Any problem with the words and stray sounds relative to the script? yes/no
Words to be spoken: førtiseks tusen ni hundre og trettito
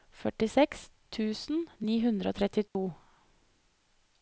yes